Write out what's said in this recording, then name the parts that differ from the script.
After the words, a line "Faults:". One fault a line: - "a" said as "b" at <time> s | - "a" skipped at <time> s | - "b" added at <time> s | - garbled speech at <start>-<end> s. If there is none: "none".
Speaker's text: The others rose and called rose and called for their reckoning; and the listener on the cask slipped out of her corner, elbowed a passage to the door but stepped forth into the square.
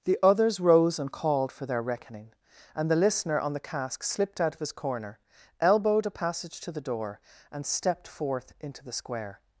The others rose and called for their reckoning; and the listener on the cask slipped out of his corner, elbowed a passage to the door and stepped forth into the square.
Faults:
- "rose and called" skipped at 1.5 s
- "her" said as "his" at 4.6 s
- "but" said as "and" at 7.5 s